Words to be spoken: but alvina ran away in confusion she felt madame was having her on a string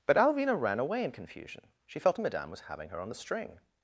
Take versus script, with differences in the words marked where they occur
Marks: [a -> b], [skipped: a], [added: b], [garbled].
but alvina ran away in confusion she felt madame was having her on [a -> the] string